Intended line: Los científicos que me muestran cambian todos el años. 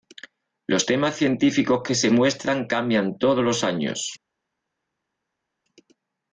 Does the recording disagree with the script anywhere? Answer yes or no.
yes